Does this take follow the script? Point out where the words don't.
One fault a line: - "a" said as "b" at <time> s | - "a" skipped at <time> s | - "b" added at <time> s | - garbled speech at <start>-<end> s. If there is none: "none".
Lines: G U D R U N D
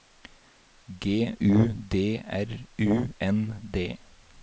none